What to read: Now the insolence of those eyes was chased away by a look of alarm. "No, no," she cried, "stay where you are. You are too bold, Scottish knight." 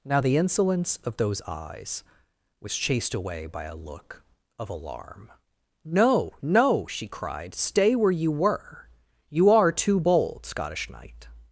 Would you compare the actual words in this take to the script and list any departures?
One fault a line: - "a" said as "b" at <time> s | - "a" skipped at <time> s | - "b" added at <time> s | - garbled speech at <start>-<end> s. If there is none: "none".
- "are" said as "were" at 8.3 s